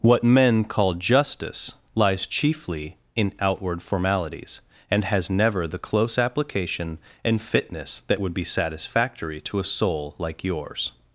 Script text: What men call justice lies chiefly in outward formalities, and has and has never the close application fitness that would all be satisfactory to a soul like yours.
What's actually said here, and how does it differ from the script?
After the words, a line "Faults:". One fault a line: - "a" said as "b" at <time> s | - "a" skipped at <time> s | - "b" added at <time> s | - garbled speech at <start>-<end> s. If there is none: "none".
What men call justice lies chiefly in outward formalities, and has never the close application and fitness that would be satisfactory to a soul like yours.
Faults:
- "and has" skipped at 5.3 s
- "and" added at 7.2 s
- "all" skipped at 8.3 s